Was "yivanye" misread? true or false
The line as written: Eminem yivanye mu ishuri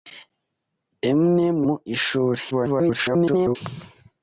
true